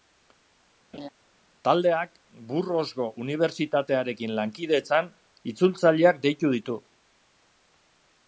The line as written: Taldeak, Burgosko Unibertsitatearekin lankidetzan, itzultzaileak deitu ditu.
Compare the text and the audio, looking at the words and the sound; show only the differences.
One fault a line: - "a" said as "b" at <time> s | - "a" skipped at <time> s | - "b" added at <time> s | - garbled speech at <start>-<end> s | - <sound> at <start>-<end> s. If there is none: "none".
- laugh at 0.9-1.1 s